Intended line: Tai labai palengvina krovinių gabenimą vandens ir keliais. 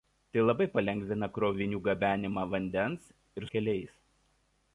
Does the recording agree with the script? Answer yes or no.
yes